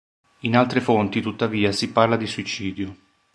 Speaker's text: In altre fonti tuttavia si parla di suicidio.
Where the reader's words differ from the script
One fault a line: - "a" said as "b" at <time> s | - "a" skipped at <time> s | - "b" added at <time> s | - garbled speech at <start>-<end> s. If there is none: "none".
none